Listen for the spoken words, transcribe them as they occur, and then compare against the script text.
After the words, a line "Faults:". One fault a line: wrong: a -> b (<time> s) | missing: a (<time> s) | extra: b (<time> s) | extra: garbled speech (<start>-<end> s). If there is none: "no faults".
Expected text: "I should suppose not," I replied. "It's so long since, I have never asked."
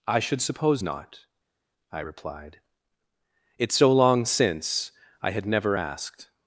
"I should suppose not," I replied. "It's so long since, I had never asked."
Faults:
wrong: have -> had (5.3 s)